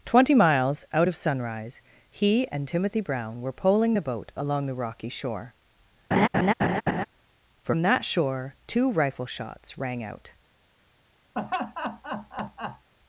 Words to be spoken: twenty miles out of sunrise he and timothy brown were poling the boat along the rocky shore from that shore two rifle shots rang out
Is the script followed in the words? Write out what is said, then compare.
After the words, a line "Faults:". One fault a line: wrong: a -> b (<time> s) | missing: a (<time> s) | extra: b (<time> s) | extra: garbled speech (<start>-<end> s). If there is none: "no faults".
twenty miles out of sunrise he and timothy brown were poling the boat along the rocky shore from that shore two rifle shots rang out
Faults:
no faults